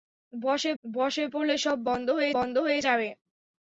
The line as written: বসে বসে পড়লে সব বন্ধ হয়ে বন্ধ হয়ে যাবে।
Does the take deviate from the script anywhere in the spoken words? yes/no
no